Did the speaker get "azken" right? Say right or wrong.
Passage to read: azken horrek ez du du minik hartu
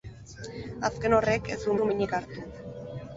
right